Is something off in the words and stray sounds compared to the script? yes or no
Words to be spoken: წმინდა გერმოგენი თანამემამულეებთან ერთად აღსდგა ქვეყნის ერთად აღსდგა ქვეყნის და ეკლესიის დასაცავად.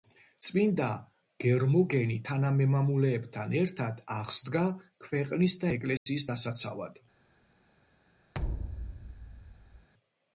yes